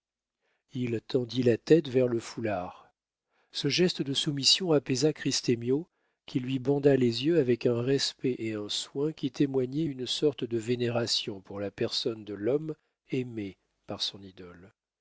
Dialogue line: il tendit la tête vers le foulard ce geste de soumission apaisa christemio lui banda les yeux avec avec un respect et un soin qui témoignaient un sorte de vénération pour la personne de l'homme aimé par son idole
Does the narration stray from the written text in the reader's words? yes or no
yes